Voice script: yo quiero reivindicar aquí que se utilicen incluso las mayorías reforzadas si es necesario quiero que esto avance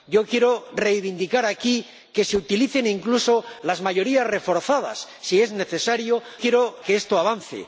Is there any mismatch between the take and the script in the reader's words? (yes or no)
no